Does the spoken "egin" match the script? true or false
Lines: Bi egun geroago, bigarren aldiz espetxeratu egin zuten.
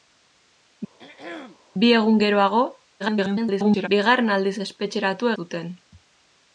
false